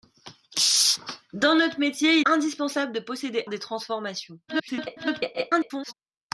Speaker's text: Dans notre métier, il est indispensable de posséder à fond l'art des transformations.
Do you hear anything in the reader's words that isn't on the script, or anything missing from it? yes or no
yes